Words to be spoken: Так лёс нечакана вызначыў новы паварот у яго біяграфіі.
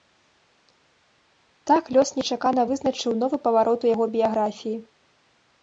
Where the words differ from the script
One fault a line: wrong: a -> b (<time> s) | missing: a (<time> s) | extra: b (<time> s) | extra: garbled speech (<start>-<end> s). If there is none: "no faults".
no faults